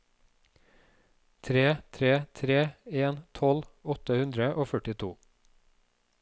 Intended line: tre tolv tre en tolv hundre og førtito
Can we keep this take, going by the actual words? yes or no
no